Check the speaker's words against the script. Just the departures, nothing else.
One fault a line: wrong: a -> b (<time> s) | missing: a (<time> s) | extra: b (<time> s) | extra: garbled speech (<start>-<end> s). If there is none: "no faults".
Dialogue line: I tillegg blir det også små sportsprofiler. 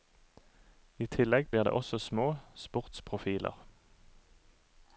no faults